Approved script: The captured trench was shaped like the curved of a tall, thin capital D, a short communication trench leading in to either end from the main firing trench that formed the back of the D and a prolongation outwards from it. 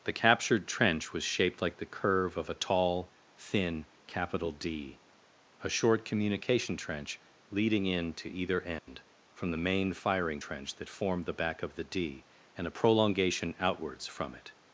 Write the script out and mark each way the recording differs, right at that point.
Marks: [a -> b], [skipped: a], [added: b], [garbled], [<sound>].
The captured trench was shaped like the [curved -> curve] of a tall, thin capital D, a short communication trench leading in to either end [dropout] from the main firing trench that formed the back of the D and a prolongation outwards from it.